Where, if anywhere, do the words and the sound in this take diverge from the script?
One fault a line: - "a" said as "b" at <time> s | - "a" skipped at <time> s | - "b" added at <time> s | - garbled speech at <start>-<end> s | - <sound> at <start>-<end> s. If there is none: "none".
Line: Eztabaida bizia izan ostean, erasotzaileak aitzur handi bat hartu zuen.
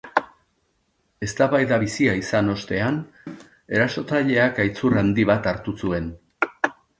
- cough at 3.3-3.5 s